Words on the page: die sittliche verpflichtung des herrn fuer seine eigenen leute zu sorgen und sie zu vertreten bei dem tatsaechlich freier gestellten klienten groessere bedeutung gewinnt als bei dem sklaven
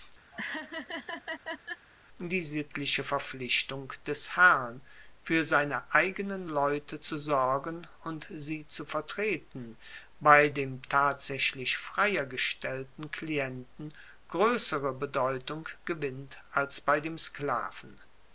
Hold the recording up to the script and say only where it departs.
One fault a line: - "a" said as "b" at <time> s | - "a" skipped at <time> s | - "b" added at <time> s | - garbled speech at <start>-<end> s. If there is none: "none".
none